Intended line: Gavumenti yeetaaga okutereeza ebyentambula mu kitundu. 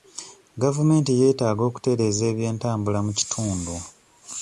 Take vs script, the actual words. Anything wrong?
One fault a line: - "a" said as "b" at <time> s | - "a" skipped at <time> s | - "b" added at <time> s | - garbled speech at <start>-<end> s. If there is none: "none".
none